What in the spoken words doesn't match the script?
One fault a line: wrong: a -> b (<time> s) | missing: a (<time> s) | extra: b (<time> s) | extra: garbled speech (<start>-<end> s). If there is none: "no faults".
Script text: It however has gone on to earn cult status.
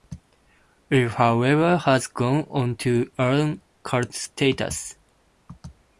no faults